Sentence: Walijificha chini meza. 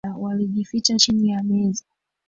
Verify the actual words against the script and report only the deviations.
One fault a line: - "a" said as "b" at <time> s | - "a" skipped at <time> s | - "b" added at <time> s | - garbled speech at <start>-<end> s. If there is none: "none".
- "ya" added at 1.3 s